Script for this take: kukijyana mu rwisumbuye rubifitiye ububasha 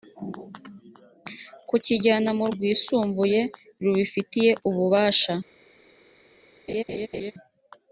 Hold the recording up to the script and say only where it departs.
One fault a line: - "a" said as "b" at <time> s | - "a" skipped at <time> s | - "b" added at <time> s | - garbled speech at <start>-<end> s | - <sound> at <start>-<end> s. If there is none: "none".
- laugh at 6.7-7.3 s